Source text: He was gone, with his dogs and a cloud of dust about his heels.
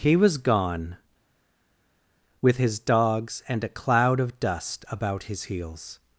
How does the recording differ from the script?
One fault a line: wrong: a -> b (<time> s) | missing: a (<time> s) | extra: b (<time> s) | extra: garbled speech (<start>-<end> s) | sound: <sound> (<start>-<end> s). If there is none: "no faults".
no faults